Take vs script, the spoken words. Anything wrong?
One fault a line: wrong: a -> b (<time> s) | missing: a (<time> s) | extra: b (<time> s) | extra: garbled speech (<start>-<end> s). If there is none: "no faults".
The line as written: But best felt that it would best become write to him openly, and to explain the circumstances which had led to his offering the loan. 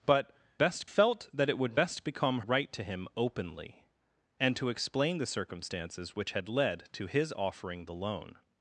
no faults